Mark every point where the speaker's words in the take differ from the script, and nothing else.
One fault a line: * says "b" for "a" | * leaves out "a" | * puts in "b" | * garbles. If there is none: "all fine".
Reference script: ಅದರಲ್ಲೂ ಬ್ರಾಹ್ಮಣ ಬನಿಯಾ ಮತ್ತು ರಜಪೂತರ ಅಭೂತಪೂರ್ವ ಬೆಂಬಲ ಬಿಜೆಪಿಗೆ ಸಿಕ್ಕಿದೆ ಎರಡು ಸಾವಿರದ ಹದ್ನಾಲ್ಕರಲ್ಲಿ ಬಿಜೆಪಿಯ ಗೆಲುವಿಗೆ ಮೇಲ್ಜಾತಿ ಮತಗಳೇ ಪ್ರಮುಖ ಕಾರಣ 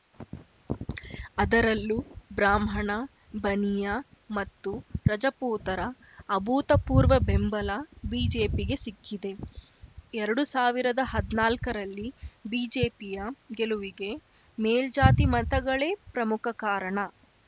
all fine